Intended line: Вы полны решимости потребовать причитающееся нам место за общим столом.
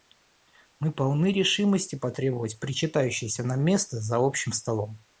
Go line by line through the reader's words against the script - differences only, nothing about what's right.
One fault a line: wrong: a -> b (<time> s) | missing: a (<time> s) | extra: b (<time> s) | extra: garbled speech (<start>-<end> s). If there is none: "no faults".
wrong: Вы -> Мы (0.8 s)